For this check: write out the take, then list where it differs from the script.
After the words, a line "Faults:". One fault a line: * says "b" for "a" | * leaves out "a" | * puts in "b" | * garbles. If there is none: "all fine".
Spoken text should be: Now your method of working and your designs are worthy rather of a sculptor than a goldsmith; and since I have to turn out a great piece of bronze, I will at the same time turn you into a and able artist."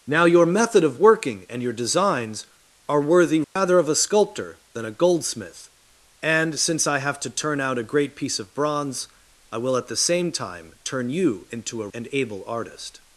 Now your method of working and your designs are worthy rather of a sculptor than a goldsmith; and since I have to turn out a great piece of bronze, I will at the same time turn you into a and able artist."
Faults:
all fine